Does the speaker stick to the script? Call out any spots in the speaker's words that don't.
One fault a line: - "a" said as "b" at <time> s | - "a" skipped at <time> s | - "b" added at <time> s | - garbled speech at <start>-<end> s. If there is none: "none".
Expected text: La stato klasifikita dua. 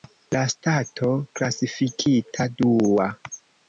none